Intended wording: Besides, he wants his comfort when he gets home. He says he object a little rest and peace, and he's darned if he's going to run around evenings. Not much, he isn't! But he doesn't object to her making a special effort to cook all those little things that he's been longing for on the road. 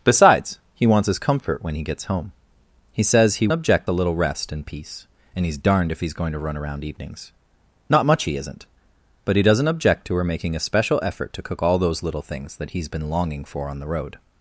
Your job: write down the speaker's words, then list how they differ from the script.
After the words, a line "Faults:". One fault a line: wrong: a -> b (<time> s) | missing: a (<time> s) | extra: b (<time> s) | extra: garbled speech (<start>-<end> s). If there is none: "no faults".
Besides, he wants his comfort when he gets home. He says he object a little rest and peace, and he's darned if he's going to run around evenings. Not much, he isn't! But he doesn't object to her making a special effort to cook all those little things that he's been longing for on the road.
Faults:
no faults